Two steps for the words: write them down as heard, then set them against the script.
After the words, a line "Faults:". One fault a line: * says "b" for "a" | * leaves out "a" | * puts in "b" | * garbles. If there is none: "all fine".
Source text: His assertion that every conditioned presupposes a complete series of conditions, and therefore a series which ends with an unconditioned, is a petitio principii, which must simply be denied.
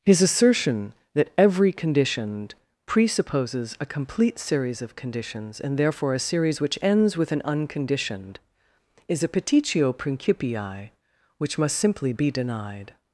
His assertion that every conditioned presupposes a complete series of conditions, and therefore a series which ends with an unconditioned, is a petitio principii, which must simply be denied.
Faults:
all fine